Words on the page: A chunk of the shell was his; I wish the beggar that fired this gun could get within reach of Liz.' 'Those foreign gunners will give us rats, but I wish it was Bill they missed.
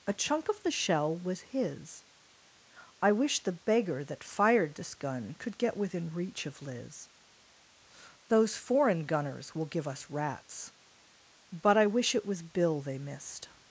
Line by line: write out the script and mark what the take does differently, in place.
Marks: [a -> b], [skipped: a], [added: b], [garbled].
A chunk of the shell was his; I wish the beggar that fired this gun could get within reach of Liz.' 'Those foreign gunners will give us rats, but I wish it was Bill they missed.